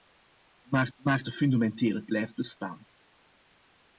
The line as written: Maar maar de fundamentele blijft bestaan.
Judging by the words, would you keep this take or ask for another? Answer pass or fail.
pass